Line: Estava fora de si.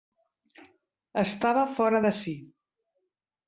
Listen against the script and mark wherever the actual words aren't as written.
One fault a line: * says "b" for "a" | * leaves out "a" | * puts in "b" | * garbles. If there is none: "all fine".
all fine